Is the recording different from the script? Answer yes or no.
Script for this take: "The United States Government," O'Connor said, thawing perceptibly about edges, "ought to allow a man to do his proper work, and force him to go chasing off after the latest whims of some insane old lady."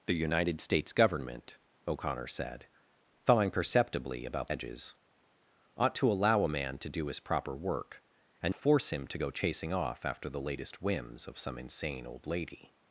no